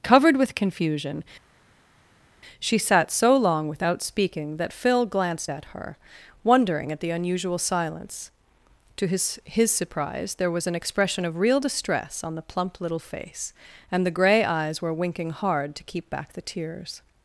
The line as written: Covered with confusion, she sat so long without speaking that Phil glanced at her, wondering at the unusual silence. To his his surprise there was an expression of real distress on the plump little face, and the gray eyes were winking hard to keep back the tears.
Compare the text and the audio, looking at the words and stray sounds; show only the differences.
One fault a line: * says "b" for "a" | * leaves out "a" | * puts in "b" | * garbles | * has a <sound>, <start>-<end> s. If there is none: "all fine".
all fine